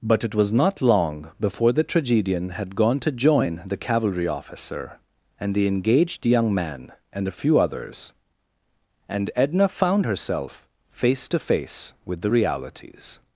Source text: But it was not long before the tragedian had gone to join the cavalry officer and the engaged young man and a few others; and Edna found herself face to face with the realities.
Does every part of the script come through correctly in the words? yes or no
yes